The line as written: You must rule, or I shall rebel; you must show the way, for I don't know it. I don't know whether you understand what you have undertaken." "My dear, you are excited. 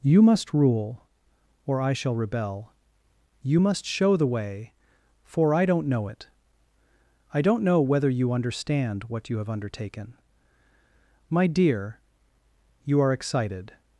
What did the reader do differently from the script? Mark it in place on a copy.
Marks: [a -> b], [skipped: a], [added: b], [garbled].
You must rule, or I shall rebel; you must show the way, for I don't know it. I don't know whether you understand what you have undertaken." "My dear, you are excited.